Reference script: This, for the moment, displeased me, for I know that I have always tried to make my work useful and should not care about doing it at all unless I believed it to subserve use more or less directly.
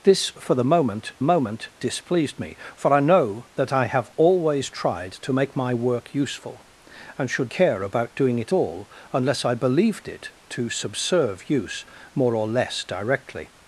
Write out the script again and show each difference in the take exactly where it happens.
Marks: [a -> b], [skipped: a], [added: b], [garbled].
This, for the moment, [added: moment] displeased me, for I know that I have always tried to make my work useful and should [skipped: not] care about doing it [skipped: at] all unless I believed it to subserve use more or less directly.